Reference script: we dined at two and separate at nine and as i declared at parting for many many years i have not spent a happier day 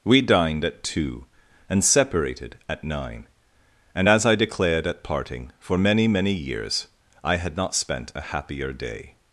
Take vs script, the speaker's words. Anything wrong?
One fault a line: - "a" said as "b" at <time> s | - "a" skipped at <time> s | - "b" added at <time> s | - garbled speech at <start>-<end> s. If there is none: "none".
- "separate" said as "separated" at 1.8 s
- "have" said as "had" at 7.4 s